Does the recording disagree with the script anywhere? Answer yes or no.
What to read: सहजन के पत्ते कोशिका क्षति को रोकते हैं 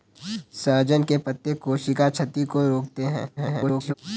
yes